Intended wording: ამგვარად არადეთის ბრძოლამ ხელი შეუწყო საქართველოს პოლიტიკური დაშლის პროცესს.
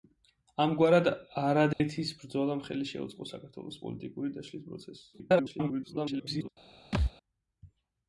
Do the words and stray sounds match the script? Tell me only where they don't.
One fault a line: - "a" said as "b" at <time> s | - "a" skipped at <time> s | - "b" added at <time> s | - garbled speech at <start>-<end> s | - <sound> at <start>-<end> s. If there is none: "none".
- dropout at 1.7-1.8 s
- garbled speech at 5.1-6.5 s
- thud at 6.9-7.1 s